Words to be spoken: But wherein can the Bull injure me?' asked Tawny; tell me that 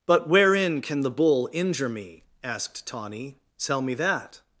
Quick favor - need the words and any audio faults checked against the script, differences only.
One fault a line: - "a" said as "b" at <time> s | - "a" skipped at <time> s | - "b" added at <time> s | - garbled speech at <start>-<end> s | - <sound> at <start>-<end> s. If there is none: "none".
none